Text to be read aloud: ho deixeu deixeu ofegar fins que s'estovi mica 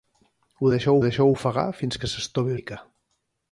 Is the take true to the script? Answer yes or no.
yes